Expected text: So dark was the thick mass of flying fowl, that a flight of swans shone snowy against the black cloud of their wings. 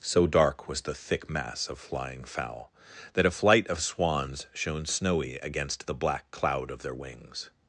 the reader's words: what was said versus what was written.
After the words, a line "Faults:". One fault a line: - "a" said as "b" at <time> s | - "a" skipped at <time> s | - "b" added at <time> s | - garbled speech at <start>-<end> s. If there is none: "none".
So dark was the thick mass of flying fowl, that a flight of swans shone snowy against the black cloud of their wings.
Faults:
none